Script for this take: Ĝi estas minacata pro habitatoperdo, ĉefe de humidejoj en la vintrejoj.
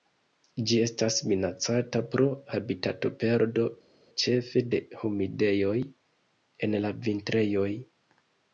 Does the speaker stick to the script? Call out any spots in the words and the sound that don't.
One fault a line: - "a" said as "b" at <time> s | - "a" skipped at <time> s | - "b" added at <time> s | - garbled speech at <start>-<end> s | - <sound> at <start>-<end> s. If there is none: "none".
none